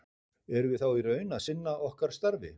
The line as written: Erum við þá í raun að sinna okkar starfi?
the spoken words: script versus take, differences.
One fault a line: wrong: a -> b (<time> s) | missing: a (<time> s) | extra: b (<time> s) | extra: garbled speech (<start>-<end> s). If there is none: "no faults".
no faults